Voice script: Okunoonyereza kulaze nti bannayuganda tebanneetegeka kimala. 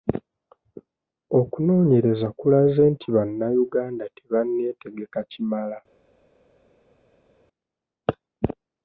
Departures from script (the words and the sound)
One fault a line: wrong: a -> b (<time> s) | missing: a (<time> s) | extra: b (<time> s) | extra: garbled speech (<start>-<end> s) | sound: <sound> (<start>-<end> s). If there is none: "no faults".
no faults